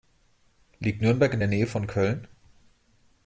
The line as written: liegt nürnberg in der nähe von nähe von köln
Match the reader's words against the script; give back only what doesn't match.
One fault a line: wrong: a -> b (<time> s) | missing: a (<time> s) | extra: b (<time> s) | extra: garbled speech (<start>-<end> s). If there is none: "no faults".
missing: nähe von (1.9 s)